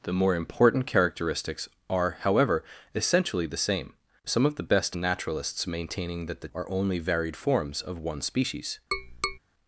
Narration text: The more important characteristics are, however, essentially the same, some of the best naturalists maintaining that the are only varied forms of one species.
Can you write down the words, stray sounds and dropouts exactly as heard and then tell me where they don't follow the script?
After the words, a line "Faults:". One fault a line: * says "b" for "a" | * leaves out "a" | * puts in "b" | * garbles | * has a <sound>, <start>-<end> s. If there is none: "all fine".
The more important characteristics are, however, essentially the same, some of the best naturalists maintaining that the are only varied forms of one species.
Faults:
* has a tap, 8.9-9.4 s